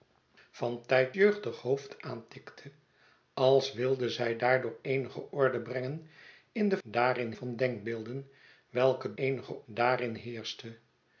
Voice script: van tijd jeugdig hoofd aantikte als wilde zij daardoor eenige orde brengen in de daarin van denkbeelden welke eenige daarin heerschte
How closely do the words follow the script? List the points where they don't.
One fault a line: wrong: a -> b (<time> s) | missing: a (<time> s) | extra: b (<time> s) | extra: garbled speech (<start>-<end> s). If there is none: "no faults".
no faults